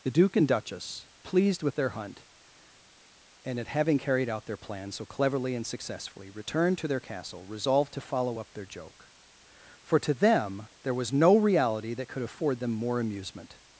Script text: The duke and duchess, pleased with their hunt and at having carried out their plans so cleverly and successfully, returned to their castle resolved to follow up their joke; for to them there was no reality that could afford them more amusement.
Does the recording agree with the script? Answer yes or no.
yes